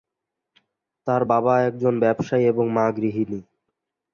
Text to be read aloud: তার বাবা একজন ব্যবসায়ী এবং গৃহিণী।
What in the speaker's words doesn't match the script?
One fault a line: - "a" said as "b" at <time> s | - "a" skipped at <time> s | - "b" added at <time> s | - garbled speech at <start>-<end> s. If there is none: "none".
- "মা" added at 2.7 s